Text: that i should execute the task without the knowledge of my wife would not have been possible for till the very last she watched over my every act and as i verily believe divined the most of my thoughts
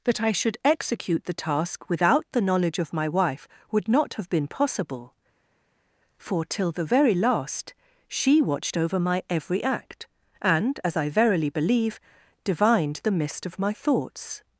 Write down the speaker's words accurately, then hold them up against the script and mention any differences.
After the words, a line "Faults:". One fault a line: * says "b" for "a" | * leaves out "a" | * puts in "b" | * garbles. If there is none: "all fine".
that i should execute the task without the knowledge of my wife would not have been possible for till the very last she watched over my every act and as i verily believe divined the mist of my thoughts
Faults:
* says "mist" for "most"